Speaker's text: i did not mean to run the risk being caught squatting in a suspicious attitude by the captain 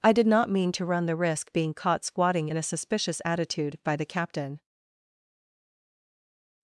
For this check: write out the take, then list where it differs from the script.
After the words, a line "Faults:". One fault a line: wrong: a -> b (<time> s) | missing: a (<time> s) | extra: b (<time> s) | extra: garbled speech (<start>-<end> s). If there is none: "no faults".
i did not mean to run the risk being caught squatting in a suspicious attitude by the captain
Faults:
no faults